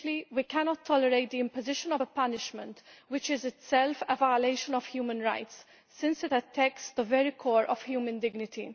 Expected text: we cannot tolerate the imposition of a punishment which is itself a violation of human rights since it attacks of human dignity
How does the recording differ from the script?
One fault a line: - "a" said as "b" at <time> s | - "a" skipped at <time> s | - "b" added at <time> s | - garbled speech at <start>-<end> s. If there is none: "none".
- "the very core" added at 6.9 s